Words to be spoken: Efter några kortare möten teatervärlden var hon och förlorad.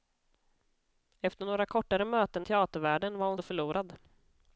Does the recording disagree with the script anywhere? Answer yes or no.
no